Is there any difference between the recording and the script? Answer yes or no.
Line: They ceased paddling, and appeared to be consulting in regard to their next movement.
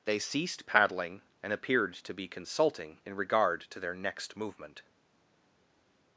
no